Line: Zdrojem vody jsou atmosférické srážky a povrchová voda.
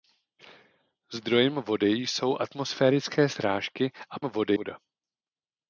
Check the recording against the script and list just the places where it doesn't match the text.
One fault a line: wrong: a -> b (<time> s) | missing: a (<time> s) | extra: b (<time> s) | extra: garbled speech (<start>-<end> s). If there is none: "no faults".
wrong: povrchová -> vody (4.2 s)